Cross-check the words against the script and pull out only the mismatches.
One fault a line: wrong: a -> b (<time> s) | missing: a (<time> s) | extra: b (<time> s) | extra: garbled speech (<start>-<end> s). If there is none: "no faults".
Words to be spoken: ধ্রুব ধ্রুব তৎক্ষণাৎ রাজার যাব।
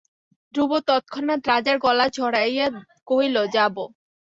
missing: ধ্রুব (0.7 s)
extra: গলা জড়াইয়া কহিল (1.8 s)